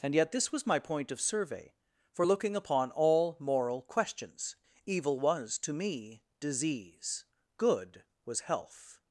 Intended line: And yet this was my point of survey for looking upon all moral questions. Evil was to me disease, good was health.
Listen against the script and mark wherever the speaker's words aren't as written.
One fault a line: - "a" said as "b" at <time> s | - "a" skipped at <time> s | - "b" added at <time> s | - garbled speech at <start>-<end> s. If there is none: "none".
none